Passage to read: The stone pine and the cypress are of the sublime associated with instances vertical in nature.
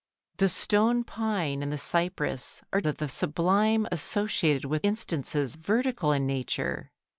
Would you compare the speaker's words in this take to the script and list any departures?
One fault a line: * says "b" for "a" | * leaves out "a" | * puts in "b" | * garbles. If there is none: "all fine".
all fine